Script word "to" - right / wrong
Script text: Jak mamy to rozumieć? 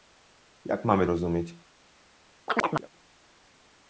wrong